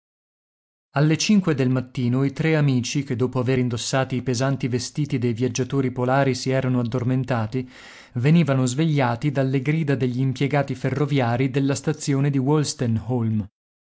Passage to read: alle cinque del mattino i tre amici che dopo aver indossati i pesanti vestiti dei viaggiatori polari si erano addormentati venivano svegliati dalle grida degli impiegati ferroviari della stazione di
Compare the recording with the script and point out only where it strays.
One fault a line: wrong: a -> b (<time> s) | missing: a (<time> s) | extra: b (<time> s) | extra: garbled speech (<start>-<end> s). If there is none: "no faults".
no faults